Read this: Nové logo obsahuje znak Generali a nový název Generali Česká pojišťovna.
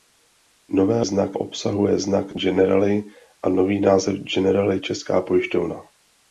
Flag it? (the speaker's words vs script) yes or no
yes